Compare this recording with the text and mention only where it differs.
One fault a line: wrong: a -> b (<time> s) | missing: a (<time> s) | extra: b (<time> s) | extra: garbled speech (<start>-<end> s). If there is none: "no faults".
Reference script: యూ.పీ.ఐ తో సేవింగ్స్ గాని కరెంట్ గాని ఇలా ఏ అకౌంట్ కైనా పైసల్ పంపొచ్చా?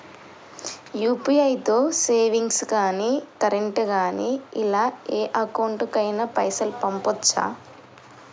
no faults